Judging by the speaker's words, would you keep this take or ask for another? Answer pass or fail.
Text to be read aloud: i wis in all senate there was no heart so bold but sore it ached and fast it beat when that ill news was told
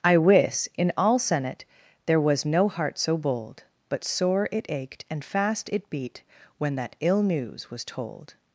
pass